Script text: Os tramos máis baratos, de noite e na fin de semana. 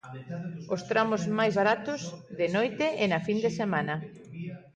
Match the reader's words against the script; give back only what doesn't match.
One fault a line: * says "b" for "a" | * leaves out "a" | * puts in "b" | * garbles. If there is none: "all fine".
all fine